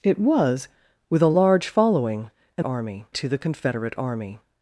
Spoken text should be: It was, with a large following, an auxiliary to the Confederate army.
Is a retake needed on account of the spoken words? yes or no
yes